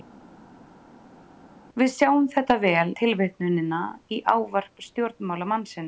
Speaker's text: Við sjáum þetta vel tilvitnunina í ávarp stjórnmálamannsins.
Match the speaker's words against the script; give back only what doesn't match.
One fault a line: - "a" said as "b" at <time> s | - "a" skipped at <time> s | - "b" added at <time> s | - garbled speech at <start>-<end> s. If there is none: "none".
none